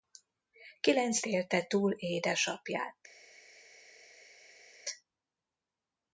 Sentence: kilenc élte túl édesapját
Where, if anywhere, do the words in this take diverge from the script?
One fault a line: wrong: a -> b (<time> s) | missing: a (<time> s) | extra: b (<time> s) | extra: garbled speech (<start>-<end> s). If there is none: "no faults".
no faults